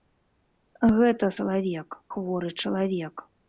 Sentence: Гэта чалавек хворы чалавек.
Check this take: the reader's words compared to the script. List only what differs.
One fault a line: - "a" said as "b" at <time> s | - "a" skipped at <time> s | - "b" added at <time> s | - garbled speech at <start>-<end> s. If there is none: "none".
none